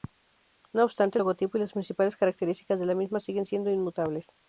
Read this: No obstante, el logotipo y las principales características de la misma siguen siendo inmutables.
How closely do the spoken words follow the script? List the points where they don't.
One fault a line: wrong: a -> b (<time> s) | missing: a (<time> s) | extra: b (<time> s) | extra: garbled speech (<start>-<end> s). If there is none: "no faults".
no faults